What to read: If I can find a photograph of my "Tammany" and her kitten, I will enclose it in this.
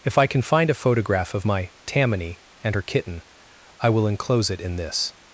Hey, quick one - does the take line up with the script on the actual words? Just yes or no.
yes